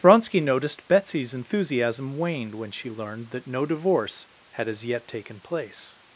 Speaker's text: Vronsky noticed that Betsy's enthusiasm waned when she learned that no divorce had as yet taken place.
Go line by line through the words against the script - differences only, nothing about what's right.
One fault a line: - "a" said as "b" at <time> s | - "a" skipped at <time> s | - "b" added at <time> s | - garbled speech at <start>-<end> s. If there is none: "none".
- "that" skipped at 0.9 s